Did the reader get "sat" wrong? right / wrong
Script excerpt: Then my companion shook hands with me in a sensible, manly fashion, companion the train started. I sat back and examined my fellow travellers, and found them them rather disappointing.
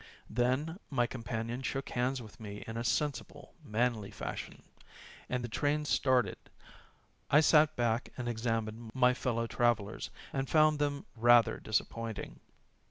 right